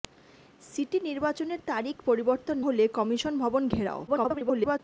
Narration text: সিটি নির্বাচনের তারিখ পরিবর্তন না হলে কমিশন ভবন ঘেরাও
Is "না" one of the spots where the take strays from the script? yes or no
yes